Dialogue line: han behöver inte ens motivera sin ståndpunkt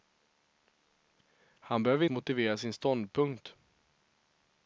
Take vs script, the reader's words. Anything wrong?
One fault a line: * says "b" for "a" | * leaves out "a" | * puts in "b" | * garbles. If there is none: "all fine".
* leaves out "inte ens"